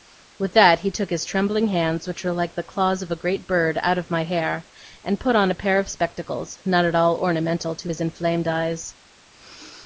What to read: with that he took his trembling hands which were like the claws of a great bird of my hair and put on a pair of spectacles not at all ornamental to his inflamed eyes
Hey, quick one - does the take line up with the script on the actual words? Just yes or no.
no